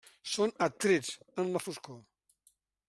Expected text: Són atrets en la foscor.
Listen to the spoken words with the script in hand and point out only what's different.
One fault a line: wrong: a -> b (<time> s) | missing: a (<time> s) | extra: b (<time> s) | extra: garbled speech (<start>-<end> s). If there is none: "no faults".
no faults